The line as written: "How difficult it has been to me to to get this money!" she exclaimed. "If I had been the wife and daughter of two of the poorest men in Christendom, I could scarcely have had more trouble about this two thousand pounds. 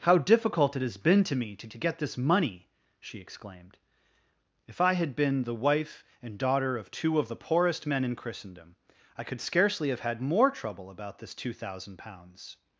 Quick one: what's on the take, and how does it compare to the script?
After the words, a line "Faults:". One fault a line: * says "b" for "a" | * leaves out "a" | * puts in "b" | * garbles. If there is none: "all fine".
"How difficult it has been to me to to get this money!" she exclaimed. "If I had been the wife and daughter of two of the poorest men in Christendom, I could scarcely have had more trouble about this two thousand pounds.
Faults:
all fine